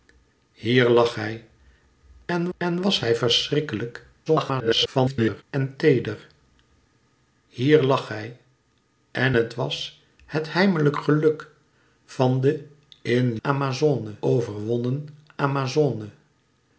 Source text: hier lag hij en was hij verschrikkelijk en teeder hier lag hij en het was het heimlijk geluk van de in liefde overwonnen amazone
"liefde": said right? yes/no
no